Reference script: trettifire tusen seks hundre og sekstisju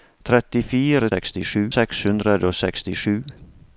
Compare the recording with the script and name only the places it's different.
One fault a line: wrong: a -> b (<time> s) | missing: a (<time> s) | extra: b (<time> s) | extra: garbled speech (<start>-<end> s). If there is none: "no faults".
wrong: tusen -> sekstisju (1.1 s)